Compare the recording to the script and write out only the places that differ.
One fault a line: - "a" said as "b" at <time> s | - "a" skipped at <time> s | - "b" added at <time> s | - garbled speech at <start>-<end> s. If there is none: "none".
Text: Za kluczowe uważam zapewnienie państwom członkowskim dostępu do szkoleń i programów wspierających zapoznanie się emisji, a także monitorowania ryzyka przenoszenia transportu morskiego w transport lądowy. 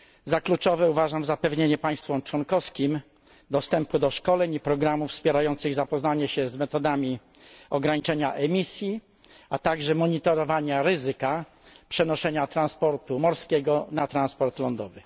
- "z metodami ograniczenia" added at 6.5 s
- "w" said as "na" at 13.9 s